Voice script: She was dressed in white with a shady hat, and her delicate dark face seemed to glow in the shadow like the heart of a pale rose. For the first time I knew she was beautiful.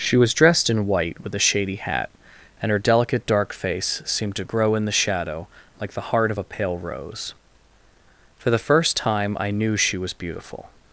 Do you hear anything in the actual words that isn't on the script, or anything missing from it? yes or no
yes